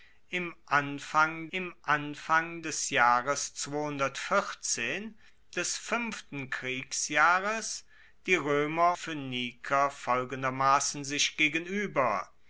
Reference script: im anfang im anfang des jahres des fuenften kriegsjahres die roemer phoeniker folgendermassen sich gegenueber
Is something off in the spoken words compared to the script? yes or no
no